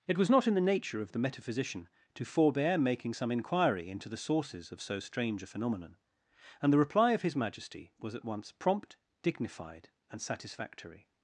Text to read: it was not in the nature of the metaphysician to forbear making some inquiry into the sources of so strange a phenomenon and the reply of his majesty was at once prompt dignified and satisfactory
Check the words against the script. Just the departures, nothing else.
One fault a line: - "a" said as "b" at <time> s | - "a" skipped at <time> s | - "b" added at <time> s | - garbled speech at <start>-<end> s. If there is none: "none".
none